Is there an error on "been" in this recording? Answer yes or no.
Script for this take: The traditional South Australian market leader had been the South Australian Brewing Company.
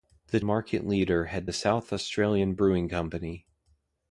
yes